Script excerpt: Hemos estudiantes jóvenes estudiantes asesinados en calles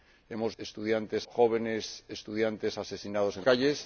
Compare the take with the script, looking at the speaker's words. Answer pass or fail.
pass